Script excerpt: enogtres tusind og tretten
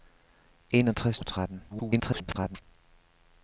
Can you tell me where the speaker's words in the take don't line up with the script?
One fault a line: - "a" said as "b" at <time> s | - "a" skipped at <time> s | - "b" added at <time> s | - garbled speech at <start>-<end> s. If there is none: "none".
- "tusind" skipped at 1.2 s
- garbled speech at 1.7-2.6 s